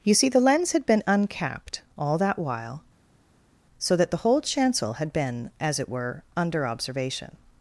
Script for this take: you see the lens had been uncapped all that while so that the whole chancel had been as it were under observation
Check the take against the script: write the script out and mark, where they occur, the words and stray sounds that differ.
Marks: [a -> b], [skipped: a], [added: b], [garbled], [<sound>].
you see the lens had been uncapped all that while so that the whole chancel had been as it were under observation